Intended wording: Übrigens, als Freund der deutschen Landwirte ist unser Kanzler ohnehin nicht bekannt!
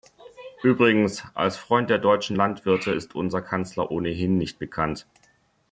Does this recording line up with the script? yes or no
yes